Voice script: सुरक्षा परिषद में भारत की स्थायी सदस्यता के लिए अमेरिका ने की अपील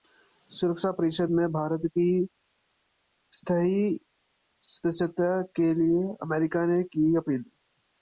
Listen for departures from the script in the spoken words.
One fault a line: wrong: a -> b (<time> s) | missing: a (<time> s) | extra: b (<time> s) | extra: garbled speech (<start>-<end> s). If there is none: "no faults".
no faults